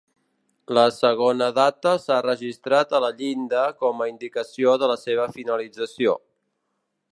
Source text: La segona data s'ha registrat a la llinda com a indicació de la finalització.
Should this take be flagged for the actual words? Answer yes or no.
yes